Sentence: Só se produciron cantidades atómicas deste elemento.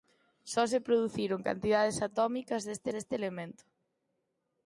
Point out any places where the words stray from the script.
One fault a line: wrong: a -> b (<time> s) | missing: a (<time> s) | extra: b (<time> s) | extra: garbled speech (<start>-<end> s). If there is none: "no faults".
extra: deste (2.9 s)